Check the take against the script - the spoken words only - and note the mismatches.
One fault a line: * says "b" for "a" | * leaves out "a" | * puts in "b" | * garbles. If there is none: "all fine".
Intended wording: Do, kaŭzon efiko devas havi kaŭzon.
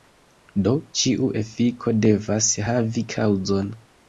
* says "ĉiu" for "kaŭzon"